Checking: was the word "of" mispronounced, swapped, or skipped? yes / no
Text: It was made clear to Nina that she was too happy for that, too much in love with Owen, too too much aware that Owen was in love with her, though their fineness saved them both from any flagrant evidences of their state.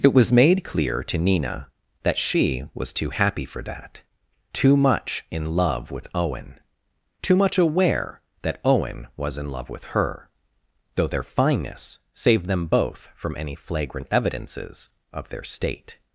no